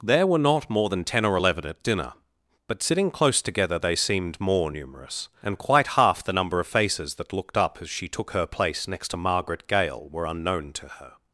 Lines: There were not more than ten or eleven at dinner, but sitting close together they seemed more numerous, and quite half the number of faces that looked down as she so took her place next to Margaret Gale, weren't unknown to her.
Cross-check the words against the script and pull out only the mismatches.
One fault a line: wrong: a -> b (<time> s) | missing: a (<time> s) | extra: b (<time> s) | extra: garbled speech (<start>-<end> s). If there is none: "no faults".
wrong: down -> up (7.6 s)
missing: so (8.1 s)
wrong: weren't -> were (10.1 s)